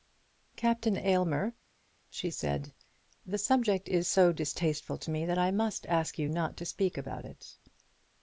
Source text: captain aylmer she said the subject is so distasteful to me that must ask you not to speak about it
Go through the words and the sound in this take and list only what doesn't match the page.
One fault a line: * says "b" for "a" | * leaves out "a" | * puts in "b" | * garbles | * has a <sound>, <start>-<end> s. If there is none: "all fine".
* puts in "i"